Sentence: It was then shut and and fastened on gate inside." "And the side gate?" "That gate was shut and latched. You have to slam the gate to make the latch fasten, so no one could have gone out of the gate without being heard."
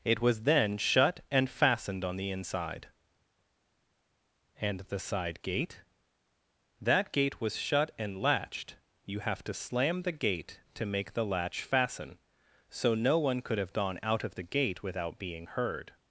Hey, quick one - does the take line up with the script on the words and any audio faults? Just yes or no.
no